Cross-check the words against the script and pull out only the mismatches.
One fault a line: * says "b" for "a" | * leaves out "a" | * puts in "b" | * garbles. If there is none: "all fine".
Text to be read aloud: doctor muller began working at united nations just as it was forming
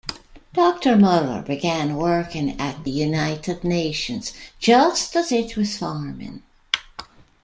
all fine